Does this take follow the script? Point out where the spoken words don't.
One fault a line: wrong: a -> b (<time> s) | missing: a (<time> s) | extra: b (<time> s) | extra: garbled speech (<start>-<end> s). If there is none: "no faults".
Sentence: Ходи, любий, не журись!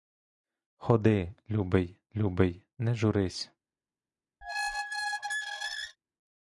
extra: любий (2.1 s)